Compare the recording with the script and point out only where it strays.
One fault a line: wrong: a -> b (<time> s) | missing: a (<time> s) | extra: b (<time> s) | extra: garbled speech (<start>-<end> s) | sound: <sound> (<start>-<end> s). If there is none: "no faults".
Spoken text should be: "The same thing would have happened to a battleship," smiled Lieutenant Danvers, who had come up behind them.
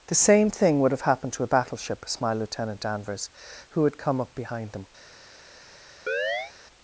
sound: chirp (6.1-6.5 s)